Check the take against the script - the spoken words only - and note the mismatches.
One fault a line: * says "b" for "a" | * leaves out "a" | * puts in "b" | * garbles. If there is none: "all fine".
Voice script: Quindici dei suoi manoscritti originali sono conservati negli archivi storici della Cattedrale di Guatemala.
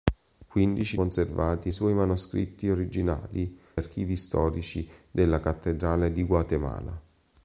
* says "conservati" for "dei"
* leaves out "sono conservati negli"